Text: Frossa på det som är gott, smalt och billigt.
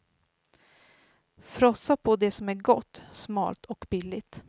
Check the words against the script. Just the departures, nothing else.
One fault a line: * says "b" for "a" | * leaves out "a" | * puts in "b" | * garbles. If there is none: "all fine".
all fine